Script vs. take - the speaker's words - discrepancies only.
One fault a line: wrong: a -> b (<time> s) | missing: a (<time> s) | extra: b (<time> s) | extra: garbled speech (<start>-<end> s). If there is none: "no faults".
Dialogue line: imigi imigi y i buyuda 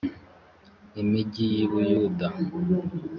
missing: imigi (1.4 s)